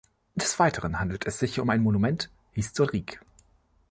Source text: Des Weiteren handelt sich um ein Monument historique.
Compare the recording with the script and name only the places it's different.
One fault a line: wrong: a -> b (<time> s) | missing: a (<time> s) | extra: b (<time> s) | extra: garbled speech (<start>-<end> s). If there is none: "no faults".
extra: es (1.3 s)